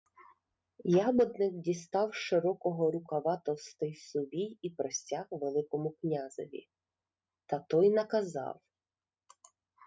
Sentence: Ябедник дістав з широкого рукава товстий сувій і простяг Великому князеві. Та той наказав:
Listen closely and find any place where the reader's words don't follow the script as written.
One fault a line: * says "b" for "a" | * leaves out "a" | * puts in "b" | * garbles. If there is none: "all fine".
all fine